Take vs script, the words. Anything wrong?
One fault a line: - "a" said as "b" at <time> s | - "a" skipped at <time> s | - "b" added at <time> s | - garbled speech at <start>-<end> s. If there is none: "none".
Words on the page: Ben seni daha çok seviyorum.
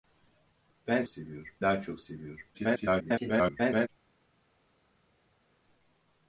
- "seni" said as "seviyorum" at 1.1 s
- garbled speech at 2.5-3.9 s